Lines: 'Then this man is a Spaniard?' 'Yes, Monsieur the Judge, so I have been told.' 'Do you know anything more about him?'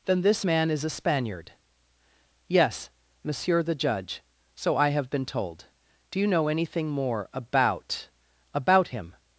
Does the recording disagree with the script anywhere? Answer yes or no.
yes